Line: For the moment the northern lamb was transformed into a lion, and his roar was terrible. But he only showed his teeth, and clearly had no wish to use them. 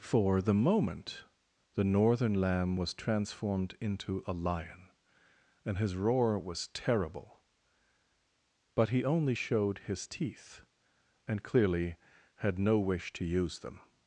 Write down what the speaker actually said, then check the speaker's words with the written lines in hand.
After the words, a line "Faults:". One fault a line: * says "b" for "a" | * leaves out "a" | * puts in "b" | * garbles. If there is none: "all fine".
For the moment the northern lamb was transformed into a lion, and his roar was terrible. But he only showed his teeth, and clearly had no wish to use them.
Faults:
all fine